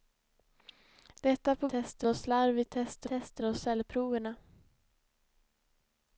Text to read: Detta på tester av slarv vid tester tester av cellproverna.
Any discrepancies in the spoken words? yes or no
no